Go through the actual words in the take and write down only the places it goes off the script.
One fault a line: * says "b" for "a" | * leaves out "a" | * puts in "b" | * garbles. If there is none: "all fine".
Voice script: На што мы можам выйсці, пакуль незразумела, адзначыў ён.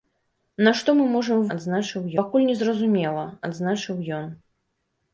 * says "адзначыў" for "выйсці"